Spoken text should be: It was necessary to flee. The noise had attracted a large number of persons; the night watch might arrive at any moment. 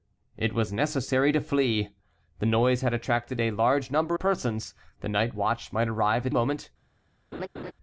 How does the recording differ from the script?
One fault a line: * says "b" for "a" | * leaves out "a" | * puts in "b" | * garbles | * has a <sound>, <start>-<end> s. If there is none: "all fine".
* leaves out "of"
* leaves out "any"
* has a laugh, 7.3-7.7 s